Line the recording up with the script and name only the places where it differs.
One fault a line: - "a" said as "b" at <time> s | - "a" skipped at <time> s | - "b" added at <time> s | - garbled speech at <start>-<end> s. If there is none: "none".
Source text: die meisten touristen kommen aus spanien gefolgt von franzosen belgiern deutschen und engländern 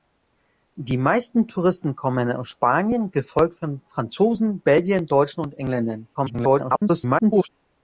- garbled speech at 6.1-7.5 s